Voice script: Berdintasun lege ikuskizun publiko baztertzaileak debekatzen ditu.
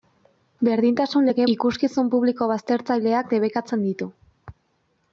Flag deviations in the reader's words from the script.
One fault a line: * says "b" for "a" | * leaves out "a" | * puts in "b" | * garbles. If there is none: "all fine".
all fine